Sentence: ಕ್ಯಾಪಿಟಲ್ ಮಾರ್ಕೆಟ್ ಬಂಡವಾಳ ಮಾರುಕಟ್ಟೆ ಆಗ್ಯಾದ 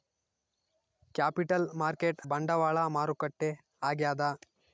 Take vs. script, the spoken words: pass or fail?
pass